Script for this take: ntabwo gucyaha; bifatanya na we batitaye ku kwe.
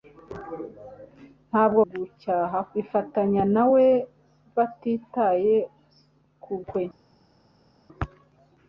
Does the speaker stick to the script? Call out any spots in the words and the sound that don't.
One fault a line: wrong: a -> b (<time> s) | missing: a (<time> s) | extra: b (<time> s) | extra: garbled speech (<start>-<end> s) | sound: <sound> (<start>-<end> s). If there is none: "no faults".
no faults